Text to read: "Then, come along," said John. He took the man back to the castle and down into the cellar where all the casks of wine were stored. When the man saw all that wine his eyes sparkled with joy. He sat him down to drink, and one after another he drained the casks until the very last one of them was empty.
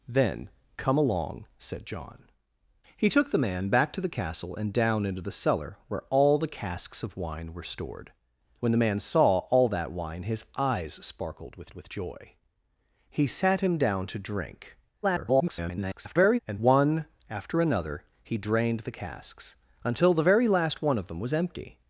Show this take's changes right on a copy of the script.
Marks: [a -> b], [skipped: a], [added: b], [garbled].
"Then, come along," said John. He took the man back to the castle and down into the cellar where all the casks of wine were stored. When the man saw all that wine his eyes sparkled with [added: with] joy. He sat him down to drink, [garbled] and one after another he drained the casks until the very last one of them was empty.